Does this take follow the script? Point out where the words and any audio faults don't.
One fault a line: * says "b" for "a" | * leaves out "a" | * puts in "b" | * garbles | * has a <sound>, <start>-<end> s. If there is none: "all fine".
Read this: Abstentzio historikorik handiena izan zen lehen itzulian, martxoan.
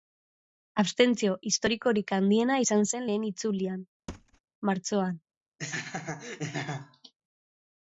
* has a thud, 4.1-4.4 s
* has a laugh, 5.6-7.1 s